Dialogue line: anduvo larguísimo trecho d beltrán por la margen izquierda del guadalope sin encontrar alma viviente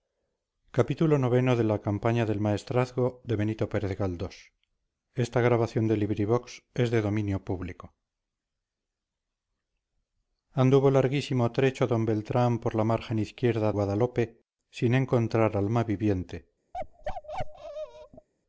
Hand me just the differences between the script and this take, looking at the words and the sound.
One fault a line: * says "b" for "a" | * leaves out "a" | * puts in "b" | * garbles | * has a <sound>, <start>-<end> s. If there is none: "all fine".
* leaves out "del"
* has a bark, 16.7-18.3 s